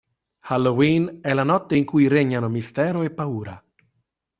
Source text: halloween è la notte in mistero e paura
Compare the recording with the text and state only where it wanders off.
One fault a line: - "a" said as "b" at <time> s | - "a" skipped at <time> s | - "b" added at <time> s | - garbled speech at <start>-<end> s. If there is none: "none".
- "cui regnano" added at 1.8 s